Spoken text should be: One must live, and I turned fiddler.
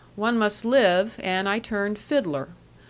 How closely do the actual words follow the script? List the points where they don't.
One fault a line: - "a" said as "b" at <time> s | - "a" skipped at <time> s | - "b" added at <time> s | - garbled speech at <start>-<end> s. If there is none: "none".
none